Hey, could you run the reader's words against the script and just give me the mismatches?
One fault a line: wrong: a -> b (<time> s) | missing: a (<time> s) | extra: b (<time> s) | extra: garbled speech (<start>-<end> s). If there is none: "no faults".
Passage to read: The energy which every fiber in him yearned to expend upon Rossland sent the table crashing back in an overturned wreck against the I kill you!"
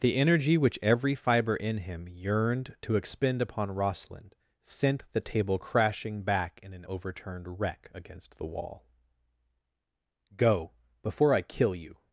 extra: wall Go before (8.5 s)